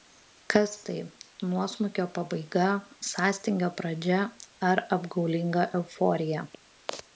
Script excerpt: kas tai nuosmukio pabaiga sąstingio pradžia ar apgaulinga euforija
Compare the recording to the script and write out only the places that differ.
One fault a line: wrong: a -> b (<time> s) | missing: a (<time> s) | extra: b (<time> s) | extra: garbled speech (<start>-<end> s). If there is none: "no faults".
no faults